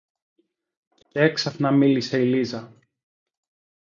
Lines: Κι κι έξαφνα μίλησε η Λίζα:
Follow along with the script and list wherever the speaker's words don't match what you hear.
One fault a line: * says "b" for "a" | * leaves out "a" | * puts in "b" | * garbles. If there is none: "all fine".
all fine